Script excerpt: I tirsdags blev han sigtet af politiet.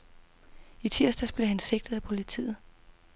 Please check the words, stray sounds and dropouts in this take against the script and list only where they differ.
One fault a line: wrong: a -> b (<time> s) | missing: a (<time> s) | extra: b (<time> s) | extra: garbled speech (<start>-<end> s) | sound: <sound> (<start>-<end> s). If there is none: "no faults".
no faults